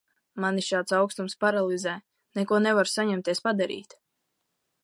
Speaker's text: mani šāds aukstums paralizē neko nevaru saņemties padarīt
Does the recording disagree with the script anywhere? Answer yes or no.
no